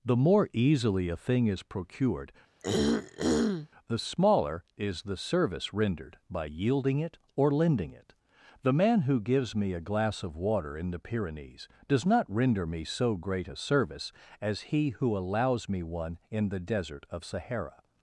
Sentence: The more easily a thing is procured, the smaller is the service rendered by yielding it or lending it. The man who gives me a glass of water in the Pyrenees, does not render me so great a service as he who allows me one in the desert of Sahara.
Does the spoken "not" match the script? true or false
true